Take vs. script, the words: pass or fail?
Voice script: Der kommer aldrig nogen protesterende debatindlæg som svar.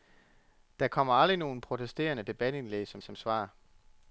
fail